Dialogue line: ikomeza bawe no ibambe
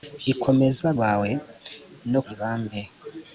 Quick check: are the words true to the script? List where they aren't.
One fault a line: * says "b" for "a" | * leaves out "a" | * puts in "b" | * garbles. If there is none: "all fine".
all fine